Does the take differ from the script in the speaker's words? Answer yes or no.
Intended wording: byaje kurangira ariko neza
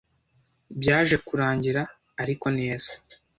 no